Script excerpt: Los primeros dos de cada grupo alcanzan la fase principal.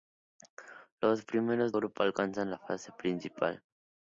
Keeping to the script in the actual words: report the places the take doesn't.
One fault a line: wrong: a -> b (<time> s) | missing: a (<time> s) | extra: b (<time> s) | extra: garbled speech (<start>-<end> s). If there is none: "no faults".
missing: dos de cada (1.7 s)